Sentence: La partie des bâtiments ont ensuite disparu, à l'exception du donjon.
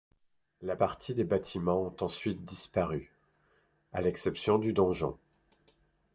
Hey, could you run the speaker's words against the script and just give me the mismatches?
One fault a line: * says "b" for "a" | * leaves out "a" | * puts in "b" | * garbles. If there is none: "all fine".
all fine